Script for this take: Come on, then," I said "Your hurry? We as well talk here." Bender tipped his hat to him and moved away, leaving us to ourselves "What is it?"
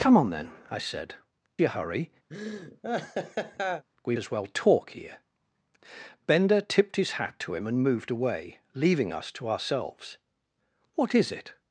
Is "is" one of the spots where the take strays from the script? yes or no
no